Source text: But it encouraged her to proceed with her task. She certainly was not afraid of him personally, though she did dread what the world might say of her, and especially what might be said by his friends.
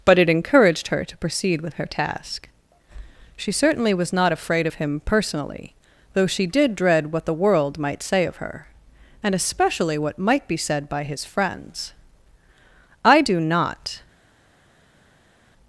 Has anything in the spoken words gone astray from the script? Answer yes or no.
yes